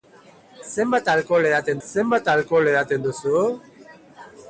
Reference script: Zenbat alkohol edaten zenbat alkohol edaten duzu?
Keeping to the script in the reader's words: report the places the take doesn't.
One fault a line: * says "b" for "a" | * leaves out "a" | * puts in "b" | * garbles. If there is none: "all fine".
all fine